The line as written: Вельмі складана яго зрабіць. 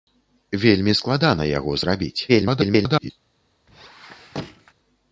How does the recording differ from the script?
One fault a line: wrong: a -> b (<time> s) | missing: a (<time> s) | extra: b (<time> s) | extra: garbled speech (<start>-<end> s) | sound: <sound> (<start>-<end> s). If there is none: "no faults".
extra: garbled speech (2.3-3.1 s)
sound: squeak (3.7-4.7 s)